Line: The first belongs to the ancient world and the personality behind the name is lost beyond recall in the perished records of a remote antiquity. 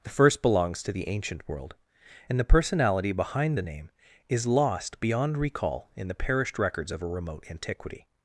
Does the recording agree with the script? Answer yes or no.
yes